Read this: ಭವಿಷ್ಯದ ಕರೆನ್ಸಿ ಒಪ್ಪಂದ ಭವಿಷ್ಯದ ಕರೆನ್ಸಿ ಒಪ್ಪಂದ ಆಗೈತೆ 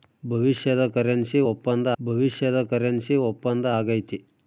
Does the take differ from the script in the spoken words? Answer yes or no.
no